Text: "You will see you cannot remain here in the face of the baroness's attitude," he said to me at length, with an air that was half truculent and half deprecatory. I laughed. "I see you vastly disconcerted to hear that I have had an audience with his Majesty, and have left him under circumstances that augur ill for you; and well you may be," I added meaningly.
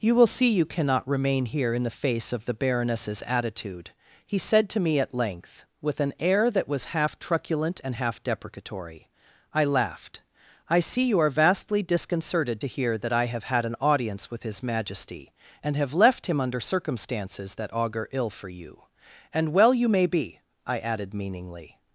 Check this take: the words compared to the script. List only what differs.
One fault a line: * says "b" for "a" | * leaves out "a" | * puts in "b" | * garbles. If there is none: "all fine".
* puts in "are"